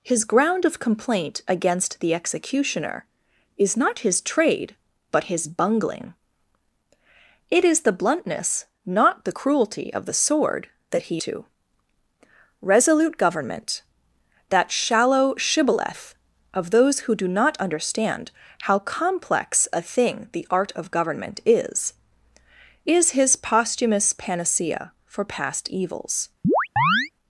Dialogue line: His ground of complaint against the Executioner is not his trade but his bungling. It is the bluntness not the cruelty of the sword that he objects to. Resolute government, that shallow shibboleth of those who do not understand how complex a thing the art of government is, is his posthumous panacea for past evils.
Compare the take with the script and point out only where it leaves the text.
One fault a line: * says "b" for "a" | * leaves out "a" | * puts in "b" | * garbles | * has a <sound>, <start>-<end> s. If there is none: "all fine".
* leaves out "objects"
* has a chirp, 26.4-27.1 s